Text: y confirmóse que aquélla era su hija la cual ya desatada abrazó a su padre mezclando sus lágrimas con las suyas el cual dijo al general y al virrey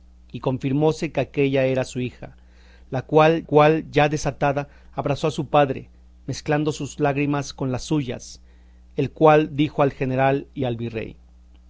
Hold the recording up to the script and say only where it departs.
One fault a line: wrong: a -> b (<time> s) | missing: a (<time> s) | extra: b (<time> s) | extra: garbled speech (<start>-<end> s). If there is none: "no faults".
extra: cual (3.4 s)